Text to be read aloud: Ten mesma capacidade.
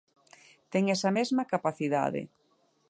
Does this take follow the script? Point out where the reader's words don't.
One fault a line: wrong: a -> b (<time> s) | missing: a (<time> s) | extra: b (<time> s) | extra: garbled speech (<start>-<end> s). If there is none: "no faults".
extra: esa (0.9 s)